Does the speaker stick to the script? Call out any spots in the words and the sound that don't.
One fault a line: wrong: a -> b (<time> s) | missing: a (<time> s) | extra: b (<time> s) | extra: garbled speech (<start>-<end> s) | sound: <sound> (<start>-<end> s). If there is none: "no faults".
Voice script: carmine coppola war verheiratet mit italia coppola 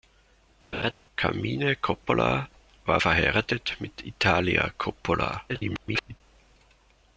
sound: laugh (0.7-0.9 s)
extra: garbled speech (5.5-6.2 s)